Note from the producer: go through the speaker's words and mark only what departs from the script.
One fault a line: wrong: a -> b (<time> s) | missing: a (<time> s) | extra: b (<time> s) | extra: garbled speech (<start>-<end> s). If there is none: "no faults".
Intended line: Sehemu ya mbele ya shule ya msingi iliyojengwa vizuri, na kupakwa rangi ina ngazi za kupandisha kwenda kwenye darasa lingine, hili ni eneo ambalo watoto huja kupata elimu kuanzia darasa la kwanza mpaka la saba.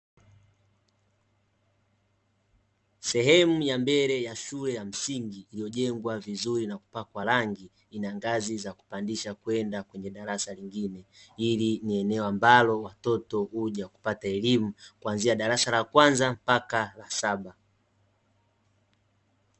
no faults